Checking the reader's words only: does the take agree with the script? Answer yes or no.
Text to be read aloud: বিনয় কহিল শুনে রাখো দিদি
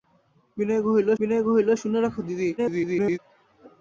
no